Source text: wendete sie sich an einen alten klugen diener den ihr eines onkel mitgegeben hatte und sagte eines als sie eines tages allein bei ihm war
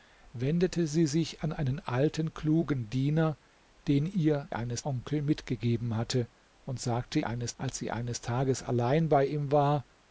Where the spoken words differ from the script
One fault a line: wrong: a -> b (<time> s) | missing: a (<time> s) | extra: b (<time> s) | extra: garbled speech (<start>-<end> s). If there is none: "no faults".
no faults